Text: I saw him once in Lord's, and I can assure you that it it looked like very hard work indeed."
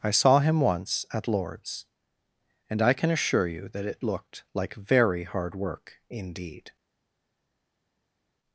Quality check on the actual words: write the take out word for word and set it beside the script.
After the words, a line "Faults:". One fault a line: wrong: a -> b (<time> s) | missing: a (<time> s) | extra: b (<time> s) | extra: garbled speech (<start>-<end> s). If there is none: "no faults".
I saw him once at Lord's, and I can assure you that it looked like very hard work indeed."
Faults:
wrong: in -> at (1.1 s)
missing: it (4.0 s)